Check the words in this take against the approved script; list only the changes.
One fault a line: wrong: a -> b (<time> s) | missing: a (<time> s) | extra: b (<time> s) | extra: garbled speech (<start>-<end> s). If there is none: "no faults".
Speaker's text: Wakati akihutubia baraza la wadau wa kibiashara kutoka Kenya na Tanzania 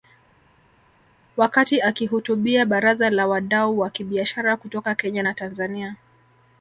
no faults